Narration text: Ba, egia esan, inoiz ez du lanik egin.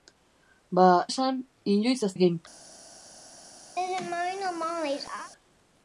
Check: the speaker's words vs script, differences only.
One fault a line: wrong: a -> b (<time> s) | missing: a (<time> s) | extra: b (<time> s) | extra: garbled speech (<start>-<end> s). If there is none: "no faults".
missing: egia (0.8 s)
missing: du lanik (2.1 s)